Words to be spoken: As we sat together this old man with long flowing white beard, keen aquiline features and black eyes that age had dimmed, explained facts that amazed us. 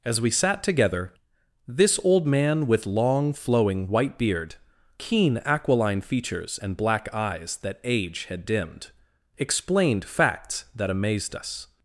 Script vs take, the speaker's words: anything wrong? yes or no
no